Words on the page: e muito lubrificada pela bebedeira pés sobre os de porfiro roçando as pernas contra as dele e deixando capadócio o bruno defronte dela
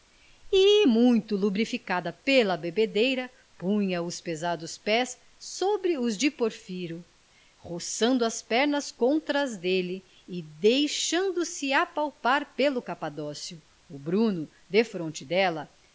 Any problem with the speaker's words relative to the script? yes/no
yes